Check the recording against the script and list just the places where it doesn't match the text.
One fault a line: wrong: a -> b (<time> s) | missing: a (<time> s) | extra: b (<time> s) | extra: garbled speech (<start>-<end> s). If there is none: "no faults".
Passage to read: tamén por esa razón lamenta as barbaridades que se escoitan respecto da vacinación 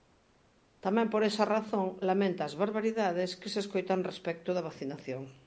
no faults